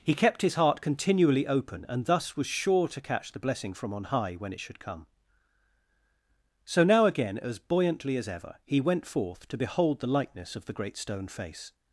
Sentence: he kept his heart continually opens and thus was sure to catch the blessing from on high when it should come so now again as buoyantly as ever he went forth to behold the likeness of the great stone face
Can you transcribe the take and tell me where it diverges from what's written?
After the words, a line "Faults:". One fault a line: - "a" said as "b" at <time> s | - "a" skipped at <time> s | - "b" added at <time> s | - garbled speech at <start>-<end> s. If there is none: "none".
he kept his heart continually open and thus was sure to catch the blessing from on high when it should come so now again as buoyantly as ever he went forth to behold the likeness of the great stone face
Faults:
- "opens" said as "open" at 1.4 s